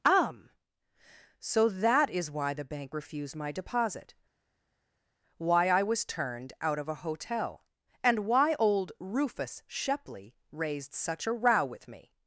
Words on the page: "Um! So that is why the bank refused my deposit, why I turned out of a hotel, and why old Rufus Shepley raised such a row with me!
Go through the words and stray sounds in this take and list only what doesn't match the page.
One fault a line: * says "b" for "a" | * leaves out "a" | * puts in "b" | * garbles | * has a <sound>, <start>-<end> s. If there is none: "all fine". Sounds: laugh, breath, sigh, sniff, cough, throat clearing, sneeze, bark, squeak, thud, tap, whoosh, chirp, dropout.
* puts in "was"